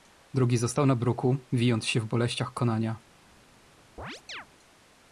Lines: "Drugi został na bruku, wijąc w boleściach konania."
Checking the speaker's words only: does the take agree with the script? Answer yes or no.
no